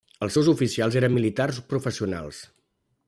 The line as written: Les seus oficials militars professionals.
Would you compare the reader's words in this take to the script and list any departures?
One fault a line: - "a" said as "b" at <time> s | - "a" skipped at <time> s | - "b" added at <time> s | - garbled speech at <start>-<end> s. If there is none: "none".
- "Les" said as "Els" at 0.2 s
- "eren" added at 1.0 s